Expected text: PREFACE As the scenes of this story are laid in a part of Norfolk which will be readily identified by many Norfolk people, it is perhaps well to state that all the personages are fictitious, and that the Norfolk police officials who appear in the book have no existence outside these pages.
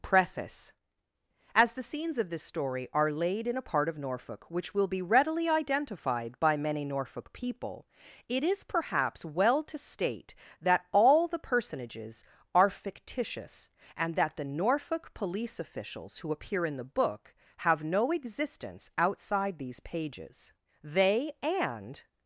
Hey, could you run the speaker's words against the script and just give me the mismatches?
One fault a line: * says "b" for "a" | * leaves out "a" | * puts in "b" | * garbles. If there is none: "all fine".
* puts in "They and"